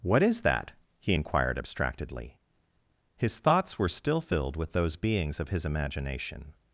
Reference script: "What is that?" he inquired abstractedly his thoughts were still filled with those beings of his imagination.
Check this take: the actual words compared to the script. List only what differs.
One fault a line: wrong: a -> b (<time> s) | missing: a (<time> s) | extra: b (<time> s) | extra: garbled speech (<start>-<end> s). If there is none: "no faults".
no faults